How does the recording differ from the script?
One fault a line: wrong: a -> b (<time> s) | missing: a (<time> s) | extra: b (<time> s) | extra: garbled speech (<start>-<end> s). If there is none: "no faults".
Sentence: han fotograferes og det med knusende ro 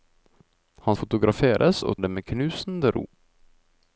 no faults